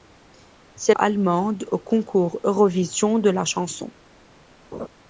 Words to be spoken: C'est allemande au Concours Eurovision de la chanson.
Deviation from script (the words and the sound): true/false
true